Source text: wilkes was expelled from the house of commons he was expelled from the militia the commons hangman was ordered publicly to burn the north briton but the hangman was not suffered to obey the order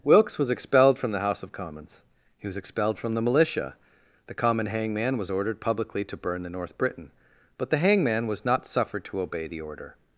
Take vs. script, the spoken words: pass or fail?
fail